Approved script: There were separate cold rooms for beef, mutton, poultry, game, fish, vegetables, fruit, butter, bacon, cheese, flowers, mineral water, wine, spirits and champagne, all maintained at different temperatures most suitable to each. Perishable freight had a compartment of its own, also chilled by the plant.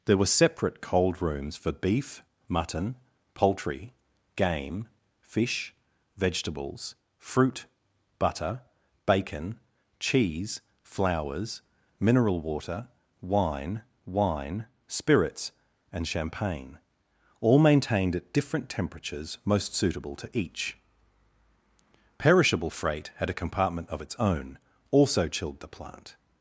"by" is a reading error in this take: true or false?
true